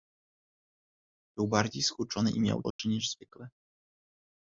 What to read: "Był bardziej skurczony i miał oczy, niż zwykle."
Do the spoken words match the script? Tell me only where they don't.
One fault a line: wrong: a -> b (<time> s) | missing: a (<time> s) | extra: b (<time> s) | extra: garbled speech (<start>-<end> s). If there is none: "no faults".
no faults